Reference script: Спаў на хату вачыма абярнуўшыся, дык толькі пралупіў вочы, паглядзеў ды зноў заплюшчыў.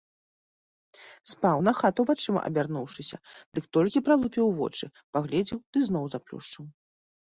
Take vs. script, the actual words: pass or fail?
pass